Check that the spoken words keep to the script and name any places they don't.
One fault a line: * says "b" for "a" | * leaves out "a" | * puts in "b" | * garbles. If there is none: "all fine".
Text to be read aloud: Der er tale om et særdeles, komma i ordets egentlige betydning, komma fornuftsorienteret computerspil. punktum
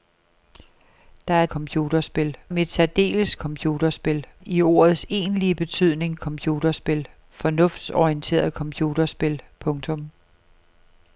* says "computerspil" for "tale"
* says "computerspil" for "komma"
* says "computerspil" for "komma"